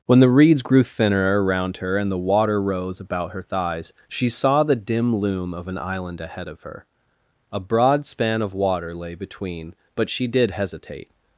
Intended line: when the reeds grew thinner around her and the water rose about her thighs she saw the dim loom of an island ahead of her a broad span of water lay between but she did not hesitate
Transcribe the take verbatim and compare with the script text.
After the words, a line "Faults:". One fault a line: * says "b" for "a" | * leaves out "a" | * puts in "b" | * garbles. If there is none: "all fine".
when the reeds grew thinner around her and the water rose about her thighs she saw the dim loom of an island ahead of her a broad span of water lay between but she did hesitate
Faults:
* leaves out "not"